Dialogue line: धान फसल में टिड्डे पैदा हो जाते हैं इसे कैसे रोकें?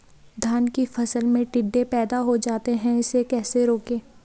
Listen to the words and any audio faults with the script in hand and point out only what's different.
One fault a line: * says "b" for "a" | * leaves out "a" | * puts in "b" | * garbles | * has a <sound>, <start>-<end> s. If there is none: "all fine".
* puts in "की"